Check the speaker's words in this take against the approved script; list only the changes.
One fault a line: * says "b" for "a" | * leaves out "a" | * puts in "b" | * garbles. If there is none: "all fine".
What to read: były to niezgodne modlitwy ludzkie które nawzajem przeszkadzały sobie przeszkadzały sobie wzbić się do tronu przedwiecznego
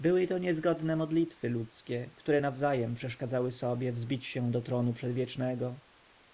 * leaves out "przeszkadzały sobie"